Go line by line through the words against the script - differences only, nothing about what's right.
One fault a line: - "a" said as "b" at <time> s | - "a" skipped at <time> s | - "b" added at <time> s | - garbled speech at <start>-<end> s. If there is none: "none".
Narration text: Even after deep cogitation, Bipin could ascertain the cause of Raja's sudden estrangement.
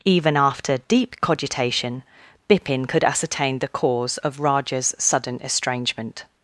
none